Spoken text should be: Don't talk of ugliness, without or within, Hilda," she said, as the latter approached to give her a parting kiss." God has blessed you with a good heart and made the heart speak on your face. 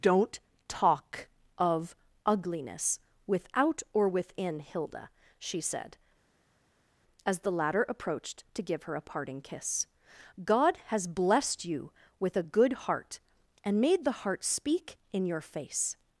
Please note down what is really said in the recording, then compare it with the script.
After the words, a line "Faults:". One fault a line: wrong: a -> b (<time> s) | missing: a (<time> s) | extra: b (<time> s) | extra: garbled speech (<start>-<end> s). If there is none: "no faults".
Don't talk of ugliness, without or within, Hilda," she said, as the latter approached to give her a parting kiss." God has blessed you with a good heart and made the heart speak in your face.
Faults:
wrong: on -> in (15.1 s)